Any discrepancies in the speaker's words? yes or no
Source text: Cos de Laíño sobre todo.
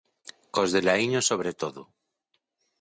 no